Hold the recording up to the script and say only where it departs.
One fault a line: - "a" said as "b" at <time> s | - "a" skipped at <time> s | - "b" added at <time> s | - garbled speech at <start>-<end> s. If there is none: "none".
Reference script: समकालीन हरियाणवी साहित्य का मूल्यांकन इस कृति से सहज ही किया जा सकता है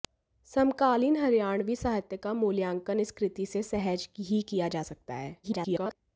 - garbled speech at 5.4-6.0 s